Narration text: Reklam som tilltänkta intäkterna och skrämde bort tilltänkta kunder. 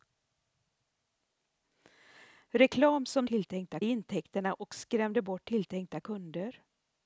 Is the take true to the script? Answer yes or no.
yes